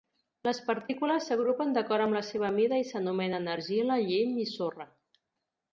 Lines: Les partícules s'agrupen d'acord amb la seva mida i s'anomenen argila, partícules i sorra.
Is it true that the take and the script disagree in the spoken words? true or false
true